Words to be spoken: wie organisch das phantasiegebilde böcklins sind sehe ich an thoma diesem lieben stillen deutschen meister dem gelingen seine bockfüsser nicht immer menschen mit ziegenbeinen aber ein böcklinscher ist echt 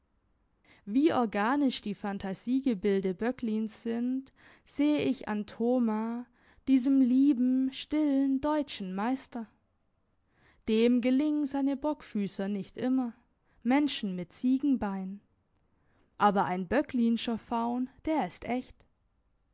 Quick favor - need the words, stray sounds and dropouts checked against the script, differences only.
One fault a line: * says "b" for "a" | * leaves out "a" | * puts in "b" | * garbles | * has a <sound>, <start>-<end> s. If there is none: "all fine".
* says "die" for "das"
* puts in "faun der"